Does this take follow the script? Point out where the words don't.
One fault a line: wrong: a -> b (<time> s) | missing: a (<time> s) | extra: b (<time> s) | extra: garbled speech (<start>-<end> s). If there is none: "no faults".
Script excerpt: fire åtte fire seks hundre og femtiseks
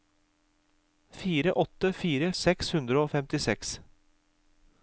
no faults